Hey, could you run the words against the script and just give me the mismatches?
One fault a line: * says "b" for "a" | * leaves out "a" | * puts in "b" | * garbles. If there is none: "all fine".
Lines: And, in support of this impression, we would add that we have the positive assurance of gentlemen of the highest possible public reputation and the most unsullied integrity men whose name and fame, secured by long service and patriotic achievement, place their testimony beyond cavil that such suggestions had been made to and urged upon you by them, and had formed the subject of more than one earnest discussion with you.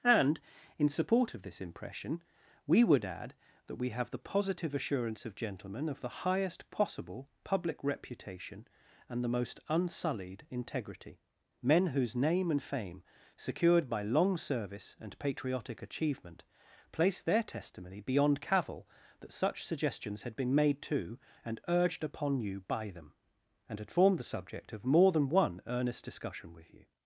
all fine